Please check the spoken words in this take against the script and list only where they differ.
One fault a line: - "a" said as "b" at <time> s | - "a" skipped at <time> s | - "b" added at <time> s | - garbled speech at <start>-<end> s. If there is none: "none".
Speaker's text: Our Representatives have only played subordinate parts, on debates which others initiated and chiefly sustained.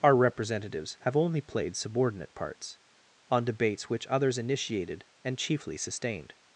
none